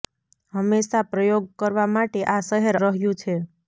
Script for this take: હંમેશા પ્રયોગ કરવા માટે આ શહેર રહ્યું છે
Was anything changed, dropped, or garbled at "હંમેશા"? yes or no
no